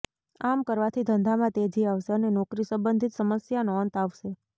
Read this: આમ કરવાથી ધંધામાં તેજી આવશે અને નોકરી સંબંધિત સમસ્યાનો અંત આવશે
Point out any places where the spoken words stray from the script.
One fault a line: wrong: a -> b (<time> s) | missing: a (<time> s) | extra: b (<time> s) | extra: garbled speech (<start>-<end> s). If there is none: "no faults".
no faults